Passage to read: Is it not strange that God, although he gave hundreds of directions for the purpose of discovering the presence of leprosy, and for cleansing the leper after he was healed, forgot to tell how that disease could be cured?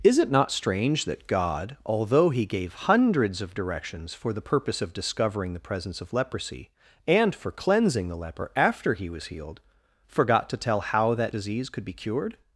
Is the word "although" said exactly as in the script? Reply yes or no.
yes